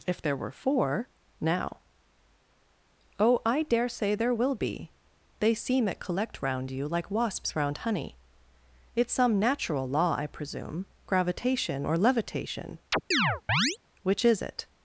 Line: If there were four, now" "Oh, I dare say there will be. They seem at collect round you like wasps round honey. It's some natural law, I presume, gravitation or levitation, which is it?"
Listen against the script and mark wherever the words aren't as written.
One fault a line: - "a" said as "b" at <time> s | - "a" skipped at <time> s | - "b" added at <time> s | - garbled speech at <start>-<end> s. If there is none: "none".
none